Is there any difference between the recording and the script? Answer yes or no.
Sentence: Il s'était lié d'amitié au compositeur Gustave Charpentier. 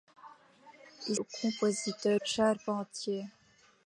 yes